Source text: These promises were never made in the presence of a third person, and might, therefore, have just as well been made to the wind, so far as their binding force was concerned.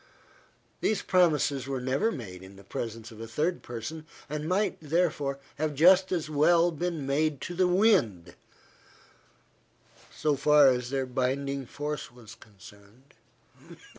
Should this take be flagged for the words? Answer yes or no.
no